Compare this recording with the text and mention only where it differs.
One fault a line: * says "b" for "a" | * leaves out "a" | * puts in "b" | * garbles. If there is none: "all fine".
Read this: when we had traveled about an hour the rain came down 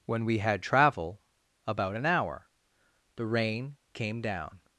* says "travel" for "traveled"